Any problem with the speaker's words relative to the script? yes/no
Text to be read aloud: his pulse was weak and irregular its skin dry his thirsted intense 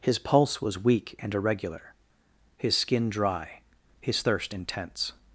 yes